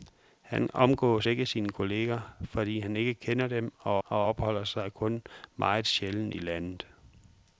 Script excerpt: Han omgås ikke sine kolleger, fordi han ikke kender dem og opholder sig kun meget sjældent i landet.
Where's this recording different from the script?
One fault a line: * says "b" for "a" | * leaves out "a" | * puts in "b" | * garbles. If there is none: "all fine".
* puts in "og"